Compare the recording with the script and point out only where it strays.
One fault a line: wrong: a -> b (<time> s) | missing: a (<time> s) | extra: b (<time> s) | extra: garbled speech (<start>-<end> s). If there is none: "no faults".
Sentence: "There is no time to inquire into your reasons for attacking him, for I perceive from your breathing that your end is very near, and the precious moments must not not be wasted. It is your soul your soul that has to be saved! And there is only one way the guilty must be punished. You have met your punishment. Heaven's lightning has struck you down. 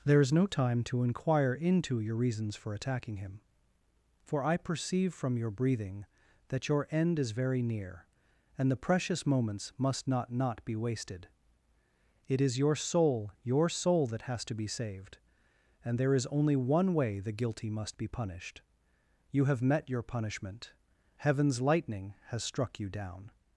no faults